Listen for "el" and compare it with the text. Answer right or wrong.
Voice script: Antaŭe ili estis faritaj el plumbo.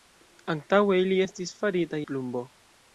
wrong